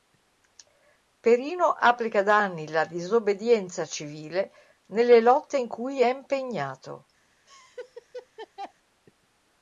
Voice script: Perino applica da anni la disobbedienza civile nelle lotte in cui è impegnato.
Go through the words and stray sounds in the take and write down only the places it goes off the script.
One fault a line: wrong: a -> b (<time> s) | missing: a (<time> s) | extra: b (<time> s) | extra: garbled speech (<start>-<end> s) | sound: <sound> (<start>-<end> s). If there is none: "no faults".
sound: laugh (7.5-8.7 s)